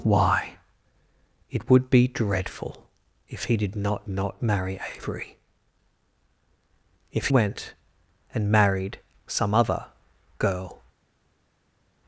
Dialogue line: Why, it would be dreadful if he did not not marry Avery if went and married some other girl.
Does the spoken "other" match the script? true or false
true